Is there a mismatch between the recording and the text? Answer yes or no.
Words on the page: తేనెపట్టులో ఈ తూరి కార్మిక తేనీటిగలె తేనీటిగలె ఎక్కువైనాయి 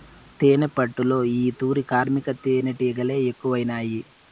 yes